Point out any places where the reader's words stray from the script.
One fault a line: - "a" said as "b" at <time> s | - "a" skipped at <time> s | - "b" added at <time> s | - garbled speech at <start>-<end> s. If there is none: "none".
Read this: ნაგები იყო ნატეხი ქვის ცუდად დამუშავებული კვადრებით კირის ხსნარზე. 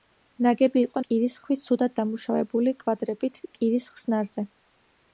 - "ნატეხი" said as "კირის" at 1.1 s